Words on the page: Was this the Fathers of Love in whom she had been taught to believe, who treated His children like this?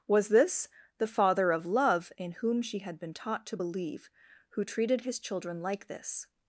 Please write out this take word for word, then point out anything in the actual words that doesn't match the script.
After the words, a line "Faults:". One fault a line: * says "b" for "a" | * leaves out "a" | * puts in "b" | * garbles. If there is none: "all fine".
Was this the Father of Love in whom she had been taught to believe, who treated His children like this?
Faults:
* says "Father" for "Fathers"